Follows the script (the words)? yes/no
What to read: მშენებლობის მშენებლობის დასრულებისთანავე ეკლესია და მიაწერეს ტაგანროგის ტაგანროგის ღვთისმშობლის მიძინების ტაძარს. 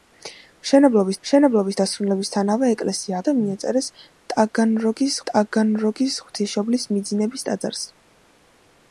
yes